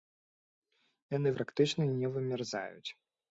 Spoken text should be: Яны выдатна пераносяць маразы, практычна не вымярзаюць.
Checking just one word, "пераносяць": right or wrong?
wrong